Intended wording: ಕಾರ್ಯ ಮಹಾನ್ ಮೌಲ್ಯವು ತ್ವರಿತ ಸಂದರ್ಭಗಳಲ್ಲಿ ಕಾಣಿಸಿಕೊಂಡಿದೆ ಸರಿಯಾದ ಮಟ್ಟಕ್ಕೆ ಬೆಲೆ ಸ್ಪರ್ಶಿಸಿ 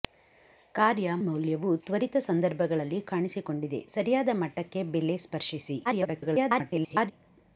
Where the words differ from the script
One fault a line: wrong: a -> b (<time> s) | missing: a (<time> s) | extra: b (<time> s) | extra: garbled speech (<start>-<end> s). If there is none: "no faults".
missing: ಮಹಾನ್ (1.1 s)
extra: garbled speech (5.9-7.1 s)